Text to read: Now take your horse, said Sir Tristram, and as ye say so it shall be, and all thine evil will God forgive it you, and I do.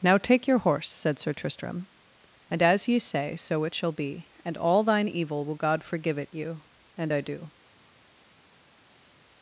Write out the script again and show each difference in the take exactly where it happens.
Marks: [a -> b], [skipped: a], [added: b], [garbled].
Now take your horse, said Sir Tristram, and as ye say so it shall be, and all thine evil will God forgive it you, and I do.